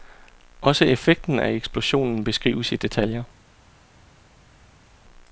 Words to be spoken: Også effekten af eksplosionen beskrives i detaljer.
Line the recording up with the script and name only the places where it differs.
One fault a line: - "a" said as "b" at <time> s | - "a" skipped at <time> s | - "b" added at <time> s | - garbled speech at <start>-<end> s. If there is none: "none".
none